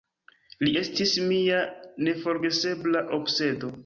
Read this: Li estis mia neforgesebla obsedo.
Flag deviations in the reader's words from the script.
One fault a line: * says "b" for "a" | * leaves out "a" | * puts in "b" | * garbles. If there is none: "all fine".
all fine